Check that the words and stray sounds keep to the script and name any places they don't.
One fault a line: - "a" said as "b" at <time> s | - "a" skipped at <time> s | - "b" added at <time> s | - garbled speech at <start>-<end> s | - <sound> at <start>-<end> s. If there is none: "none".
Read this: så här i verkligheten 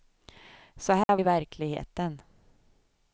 - dropout at 1.0-1.1 s